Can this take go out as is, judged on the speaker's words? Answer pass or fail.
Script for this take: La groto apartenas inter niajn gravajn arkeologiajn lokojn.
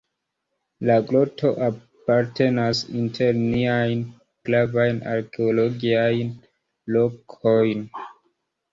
pass